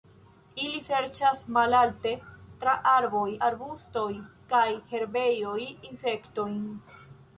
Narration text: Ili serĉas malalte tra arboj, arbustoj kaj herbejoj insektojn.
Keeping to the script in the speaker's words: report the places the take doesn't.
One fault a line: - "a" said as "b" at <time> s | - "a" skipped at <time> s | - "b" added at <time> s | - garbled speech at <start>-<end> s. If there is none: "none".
none